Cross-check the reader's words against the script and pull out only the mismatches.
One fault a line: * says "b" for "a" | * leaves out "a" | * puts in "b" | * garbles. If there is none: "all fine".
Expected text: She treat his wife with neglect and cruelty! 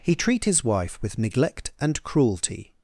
* says "He" for "She"